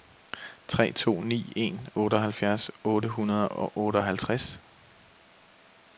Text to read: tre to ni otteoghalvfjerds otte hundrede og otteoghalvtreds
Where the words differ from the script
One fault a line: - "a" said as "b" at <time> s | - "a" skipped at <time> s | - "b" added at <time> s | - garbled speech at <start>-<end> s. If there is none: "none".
- "en" added at 1.6 s